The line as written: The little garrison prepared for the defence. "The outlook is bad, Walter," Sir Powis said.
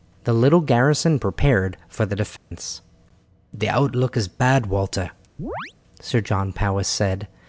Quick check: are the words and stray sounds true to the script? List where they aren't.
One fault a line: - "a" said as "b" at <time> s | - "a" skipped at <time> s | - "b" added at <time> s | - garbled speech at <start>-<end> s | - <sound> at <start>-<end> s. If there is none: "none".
- dropout at 2.4-2.5 s
- chirp at 5.4-5.7 s
- "John" added at 6.2 s